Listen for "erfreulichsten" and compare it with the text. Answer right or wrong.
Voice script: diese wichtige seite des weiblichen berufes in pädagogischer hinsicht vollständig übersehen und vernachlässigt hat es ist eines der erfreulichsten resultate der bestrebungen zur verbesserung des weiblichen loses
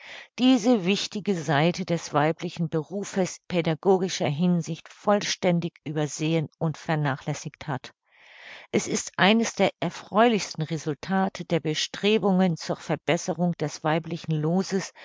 right